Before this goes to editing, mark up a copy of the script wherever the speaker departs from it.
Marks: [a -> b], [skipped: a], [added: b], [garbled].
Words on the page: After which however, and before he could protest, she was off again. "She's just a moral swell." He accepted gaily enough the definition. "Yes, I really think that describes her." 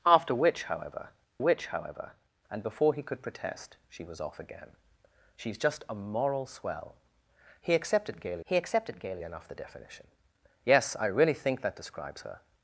After which however, [added: which however] and before he could protest, she was off again. "She's just a moral swell." He accepted gaily [added: he accepted gaily] enough the definition. "Yes, I really think that describes her."